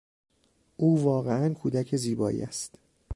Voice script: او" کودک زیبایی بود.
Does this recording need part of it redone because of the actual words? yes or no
yes